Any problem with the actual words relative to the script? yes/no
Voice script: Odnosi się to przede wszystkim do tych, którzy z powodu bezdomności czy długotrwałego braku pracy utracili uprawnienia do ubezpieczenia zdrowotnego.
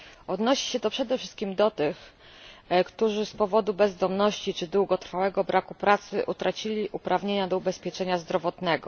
no